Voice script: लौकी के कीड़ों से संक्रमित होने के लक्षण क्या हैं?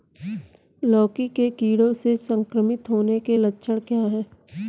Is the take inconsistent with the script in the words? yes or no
no